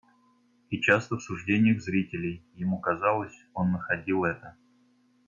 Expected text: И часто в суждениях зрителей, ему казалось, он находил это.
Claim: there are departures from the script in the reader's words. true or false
false